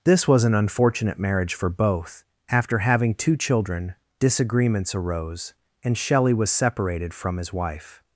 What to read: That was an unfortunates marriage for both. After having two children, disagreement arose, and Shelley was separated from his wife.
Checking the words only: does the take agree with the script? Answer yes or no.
no